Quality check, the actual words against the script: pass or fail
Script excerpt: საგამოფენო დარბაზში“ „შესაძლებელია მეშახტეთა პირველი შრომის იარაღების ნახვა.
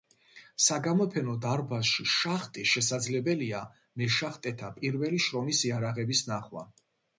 fail